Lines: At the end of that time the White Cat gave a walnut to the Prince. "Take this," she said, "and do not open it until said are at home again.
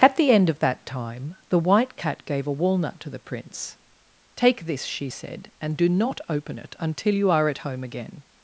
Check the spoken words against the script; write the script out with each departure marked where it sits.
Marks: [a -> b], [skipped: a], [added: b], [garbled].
At the end of that time the White Cat gave a walnut to the Prince. "Take this," she said, "and do not open it until [said -> you] are at home again.